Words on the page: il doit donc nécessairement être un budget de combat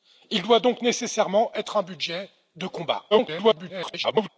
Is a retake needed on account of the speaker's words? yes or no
yes